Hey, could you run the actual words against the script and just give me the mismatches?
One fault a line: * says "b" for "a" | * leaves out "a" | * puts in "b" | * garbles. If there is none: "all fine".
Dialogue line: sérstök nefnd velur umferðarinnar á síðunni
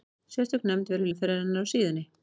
all fine